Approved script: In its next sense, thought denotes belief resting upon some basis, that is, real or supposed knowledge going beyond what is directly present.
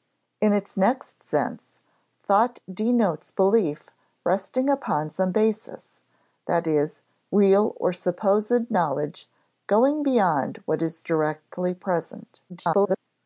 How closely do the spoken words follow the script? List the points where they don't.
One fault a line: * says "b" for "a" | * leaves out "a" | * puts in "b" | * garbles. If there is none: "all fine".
* garbles